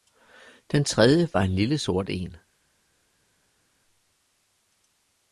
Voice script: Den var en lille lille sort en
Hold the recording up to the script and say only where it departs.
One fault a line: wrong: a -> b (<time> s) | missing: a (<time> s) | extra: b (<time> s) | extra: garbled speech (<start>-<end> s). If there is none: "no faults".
extra: tredje (0.8 s)
missing: lille (1.8 s)